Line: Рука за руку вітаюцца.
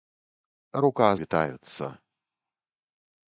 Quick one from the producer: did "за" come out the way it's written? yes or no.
no